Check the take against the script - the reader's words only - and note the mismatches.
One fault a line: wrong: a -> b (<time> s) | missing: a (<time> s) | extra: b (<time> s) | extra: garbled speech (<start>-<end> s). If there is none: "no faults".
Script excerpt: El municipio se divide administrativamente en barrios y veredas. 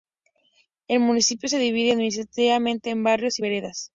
no faults